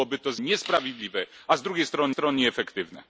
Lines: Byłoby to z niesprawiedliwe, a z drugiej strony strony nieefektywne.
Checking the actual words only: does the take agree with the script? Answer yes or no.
yes